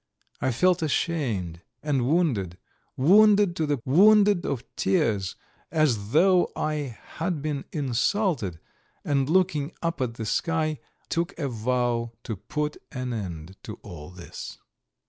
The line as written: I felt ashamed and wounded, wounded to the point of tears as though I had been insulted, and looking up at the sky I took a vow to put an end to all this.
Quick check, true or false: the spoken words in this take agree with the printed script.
false